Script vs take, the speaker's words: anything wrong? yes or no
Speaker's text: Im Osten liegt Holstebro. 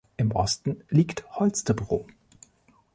no